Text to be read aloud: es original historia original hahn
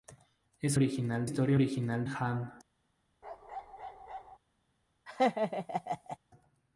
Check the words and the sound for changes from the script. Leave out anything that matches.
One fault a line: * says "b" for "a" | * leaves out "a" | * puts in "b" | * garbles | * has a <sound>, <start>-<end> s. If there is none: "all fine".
* has a bark, 3.2-4.4 s
* has a laugh, 5.1-6.2 s